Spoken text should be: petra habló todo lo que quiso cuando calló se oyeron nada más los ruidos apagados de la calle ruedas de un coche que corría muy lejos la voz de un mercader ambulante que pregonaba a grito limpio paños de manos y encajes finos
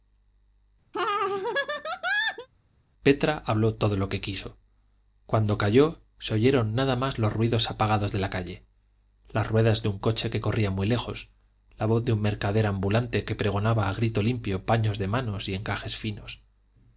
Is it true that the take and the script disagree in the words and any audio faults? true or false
true